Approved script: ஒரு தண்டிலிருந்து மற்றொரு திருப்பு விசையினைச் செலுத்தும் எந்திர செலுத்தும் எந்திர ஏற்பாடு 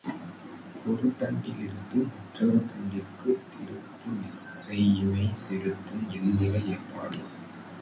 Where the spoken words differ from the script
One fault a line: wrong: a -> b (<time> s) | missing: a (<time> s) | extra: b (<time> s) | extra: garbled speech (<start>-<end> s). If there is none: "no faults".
extra: தண்டிற்குத் (2.6 s)
missing: செலுத்தும் எந்திர (6.6 s)